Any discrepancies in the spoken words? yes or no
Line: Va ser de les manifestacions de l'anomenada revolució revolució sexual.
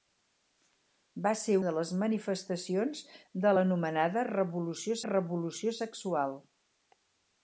no